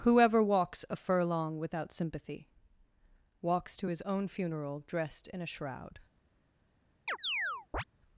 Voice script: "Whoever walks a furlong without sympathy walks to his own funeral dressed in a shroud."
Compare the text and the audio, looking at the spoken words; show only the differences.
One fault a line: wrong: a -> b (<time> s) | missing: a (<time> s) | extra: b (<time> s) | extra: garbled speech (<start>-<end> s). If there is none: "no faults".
no faults